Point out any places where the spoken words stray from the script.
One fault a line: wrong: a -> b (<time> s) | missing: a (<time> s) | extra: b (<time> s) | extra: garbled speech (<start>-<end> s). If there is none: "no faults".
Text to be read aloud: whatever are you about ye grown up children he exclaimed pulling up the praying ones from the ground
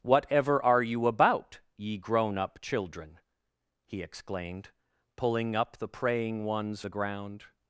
missing: from (6.8 s)